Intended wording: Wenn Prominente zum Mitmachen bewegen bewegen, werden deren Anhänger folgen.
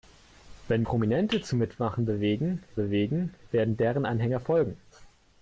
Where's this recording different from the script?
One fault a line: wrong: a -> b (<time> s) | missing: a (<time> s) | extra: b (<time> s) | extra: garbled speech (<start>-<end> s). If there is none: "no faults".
no faults